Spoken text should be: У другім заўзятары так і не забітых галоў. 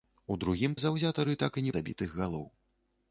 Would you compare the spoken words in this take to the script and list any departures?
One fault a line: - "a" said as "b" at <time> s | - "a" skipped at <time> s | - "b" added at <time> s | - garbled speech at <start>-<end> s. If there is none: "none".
none